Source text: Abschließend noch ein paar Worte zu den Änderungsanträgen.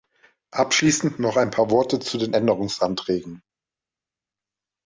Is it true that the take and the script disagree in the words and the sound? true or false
false